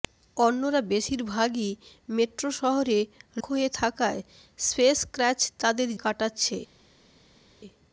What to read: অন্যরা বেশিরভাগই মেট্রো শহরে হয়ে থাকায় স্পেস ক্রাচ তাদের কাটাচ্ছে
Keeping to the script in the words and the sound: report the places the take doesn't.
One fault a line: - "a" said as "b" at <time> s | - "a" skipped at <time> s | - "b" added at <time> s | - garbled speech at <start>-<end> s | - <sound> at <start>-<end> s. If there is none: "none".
none